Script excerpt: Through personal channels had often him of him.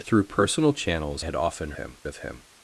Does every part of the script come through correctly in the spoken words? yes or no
yes